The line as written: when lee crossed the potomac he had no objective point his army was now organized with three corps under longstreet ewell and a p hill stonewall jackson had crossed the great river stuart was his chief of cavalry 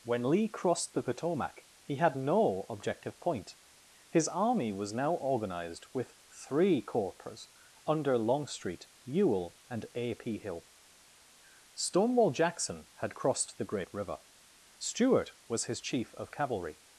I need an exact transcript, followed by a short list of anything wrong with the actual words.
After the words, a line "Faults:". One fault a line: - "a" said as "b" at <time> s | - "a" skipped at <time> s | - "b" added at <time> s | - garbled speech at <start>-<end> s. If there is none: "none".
when lee crossed the potomac he had no objective point his army was now organized with three corps under longstreet ewell and a p hill stonewall jackson had crossed the great river stuart was his chief of cavalry
Faults:
none